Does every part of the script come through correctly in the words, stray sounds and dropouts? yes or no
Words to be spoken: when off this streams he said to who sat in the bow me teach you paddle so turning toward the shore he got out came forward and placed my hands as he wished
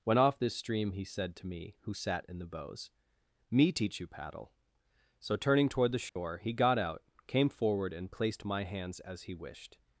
no